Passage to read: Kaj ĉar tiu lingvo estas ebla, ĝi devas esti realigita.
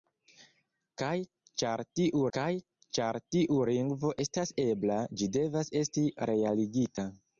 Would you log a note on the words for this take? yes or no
yes